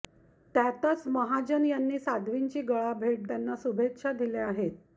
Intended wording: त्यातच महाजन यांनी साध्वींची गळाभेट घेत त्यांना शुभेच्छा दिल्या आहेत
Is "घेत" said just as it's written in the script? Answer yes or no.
no